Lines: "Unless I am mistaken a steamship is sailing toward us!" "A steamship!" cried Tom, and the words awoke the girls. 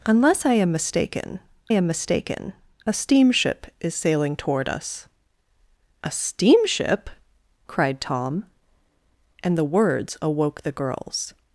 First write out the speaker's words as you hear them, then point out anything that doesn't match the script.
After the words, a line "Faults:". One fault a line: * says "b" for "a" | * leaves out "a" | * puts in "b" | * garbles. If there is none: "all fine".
"Unless I am mistaken am mistaken a steamship is sailing toward us!" "A steamship!" cried Tom, and the words awoke the girls.
Faults:
* puts in "am mistaken"